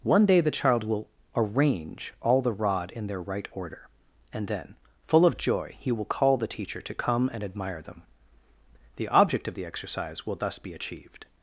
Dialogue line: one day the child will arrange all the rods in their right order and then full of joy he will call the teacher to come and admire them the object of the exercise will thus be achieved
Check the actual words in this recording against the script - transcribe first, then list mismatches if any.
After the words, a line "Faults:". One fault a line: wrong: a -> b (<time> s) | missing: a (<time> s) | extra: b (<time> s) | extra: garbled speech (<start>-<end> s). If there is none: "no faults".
one day the child will arrange all the rod in their right order and then full of joy he will call the teacher to come and admire them the object of the exercise will thus be achieved
Faults:
wrong: rods -> rod (2.5 s)